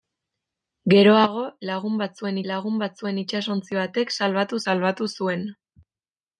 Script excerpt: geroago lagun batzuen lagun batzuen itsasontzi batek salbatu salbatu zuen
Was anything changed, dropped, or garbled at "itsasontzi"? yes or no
no